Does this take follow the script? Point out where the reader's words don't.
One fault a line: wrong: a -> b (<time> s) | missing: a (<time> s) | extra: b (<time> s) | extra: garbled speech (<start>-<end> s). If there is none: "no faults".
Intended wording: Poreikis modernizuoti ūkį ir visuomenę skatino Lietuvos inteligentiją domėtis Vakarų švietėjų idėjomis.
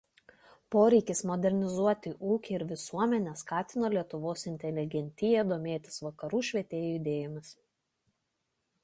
no faults